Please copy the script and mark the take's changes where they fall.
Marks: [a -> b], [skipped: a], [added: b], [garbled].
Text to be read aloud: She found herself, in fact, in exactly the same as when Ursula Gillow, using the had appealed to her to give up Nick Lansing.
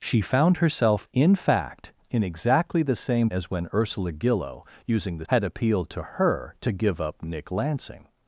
She found herself, in fact, in exactly the same as when Ursula Gillow, using the had appealed to her to give up Nick Lansing.